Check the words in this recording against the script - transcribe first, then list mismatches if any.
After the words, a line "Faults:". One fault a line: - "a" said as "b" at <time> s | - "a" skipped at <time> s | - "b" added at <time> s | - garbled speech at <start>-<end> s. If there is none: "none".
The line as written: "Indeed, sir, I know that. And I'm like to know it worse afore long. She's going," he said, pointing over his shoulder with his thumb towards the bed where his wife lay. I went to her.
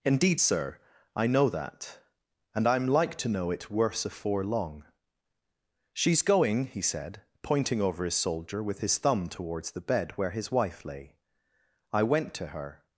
"Indeed, sir, I know that. And I'm like to know it worse afore long. She's going," he said, pointing over his soldier with his thumb towards the bed where his wife lay. I went to her.
Faults:
- "shoulder" said as "soldier" at 8.1 s